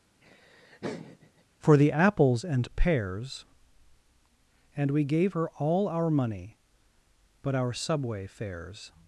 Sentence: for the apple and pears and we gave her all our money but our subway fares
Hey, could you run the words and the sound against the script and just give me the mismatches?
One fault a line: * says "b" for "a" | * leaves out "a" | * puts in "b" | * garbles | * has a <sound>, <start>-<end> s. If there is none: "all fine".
* has a laugh, 0.2-1.4 s
* says "apples" for "apple"